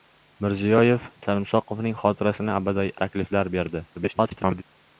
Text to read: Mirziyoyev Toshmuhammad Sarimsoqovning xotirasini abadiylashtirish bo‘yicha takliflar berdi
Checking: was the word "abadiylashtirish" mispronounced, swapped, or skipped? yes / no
yes